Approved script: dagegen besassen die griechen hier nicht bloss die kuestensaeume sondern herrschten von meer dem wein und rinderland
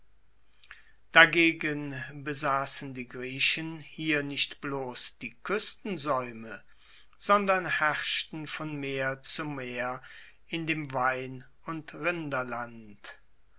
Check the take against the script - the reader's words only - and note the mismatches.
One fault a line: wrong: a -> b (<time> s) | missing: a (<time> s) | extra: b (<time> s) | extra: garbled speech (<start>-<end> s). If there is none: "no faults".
extra: zu meer in (9.2 s)